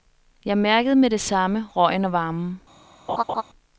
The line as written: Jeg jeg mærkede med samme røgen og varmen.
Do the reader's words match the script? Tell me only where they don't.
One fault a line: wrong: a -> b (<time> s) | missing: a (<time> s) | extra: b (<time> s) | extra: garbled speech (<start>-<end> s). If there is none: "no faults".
missing: jeg (0.6 s)
extra: det (1.1 s)